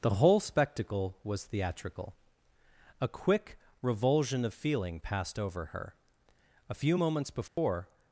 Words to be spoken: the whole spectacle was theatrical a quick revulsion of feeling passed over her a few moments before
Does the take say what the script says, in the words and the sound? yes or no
no